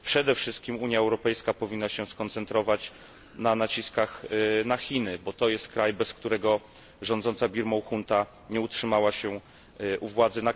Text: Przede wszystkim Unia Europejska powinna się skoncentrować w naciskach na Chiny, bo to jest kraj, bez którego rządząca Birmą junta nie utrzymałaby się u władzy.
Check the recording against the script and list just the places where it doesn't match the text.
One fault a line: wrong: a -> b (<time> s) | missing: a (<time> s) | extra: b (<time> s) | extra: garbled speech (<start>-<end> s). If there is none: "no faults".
wrong: w -> na (3.4 s)